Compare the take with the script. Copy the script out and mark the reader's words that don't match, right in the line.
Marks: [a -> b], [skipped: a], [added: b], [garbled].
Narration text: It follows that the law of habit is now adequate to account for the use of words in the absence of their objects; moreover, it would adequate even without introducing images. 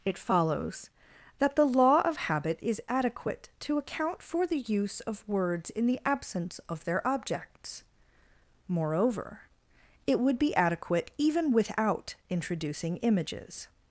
It follows that the law of habit is [skipped: now] adequate to account for the use of words in the absence of their objects; moreover, it would [added: be] adequate even without introducing images.